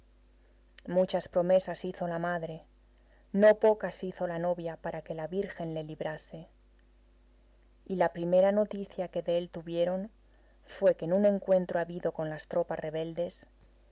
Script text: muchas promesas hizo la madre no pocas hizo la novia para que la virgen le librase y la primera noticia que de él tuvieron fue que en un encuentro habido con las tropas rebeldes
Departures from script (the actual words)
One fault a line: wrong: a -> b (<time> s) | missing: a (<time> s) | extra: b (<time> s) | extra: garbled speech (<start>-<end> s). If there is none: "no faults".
no faults